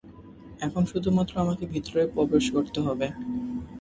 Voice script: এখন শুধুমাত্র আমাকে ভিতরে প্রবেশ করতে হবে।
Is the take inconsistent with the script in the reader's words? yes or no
no